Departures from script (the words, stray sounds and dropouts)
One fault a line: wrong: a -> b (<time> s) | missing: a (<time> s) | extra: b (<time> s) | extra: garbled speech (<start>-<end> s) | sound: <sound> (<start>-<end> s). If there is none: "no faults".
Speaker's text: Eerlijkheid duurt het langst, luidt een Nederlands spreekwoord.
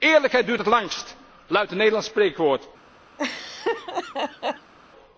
sound: laugh (3.2-4.7 s)